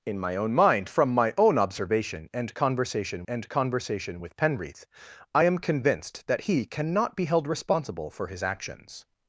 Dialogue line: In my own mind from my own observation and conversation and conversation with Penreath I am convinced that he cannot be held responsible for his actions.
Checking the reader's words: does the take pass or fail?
pass